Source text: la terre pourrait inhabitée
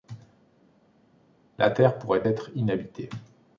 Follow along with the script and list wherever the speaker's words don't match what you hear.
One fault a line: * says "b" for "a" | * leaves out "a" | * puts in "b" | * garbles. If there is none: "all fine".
* puts in "être"